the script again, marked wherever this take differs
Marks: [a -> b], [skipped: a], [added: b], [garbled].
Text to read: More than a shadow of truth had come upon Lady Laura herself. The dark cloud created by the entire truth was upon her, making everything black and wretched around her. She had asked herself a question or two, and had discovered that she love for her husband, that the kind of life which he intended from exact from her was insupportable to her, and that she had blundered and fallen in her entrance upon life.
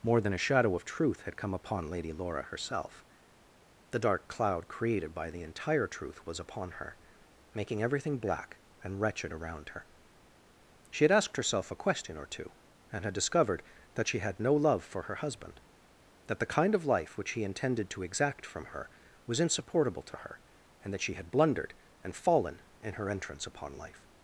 More than a shadow of truth had come upon Lady Laura herself. The dark cloud created by the entire truth was upon her, making everything black and wretched around her. She had asked herself a question or two, and had discovered that she [added: had no] love for her husband, that the kind of life which he intended [from -> to] exact from her was insupportable to her, and that she had blundered and fallen in her entrance upon life.